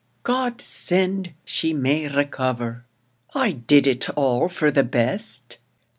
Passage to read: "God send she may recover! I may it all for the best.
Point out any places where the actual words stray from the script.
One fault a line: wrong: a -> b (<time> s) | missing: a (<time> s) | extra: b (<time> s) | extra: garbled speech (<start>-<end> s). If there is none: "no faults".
wrong: may -> did (3.5 s)